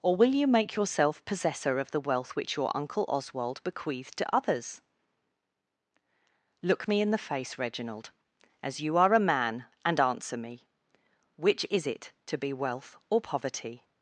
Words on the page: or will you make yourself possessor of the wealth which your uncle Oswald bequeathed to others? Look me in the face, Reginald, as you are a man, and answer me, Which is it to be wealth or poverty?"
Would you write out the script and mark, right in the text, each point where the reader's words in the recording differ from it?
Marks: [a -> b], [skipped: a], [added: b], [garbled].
or will you make yourself possessor of the wealth which your uncle Oswald bequeathed to others? Look me in the face, Reginald, as you are a man, and answer me, Which is it to be wealth or poverty?"